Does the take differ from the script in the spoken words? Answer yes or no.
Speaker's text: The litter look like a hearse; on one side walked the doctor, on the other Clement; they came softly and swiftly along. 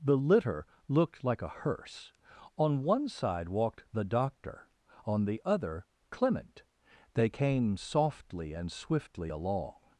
yes